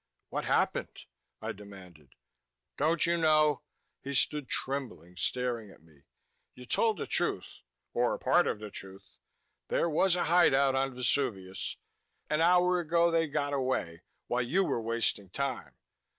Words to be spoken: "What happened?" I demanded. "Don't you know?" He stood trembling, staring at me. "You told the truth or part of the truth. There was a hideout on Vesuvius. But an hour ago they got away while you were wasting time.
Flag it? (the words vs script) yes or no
yes